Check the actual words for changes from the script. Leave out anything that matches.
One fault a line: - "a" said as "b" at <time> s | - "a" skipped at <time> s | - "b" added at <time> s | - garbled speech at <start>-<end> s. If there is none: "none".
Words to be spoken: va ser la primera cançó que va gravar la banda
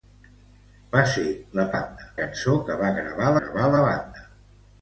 - "primera" said as "banda" at 1.7 s
- "gravar" added at 3.4 s